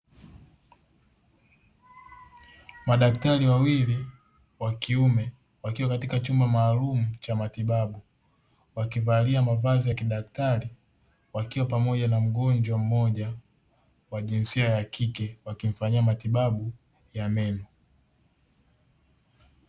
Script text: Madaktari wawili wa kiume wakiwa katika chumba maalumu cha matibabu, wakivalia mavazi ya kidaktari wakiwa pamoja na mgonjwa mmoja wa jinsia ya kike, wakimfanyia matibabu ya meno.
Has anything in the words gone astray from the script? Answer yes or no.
no